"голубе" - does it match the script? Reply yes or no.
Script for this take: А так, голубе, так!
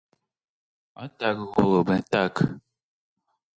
yes